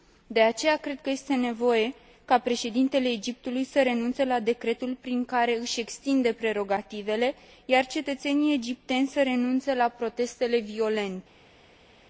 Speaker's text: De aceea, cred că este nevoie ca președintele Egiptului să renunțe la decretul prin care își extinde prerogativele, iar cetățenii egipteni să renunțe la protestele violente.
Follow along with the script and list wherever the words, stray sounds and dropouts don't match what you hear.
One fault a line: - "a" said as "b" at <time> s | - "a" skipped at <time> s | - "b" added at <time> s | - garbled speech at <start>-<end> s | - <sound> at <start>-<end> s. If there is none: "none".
none